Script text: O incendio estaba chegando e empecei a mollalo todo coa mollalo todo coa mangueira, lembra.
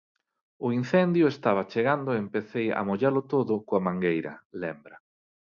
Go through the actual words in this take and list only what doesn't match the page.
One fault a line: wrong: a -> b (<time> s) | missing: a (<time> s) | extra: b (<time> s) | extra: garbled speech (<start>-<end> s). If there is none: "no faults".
missing: mollalo todo coa (3.9 s)